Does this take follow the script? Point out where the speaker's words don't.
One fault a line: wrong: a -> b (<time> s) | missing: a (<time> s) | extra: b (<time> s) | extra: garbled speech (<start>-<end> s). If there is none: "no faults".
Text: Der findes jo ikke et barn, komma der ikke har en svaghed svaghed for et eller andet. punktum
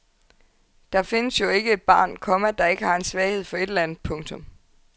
missing: svaghed (3.4 s)